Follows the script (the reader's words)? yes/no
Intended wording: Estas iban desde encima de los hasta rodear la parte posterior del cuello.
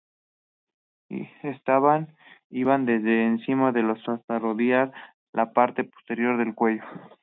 yes